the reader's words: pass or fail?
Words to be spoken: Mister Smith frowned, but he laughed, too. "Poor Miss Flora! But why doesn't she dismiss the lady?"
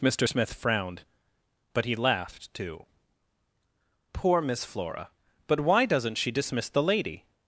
pass